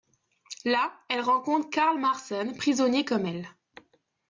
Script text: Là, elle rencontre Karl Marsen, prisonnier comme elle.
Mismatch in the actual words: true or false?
false